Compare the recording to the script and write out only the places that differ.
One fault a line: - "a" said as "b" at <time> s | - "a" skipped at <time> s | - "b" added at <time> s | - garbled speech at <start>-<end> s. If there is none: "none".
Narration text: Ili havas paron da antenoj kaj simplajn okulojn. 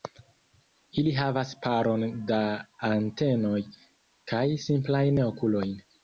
none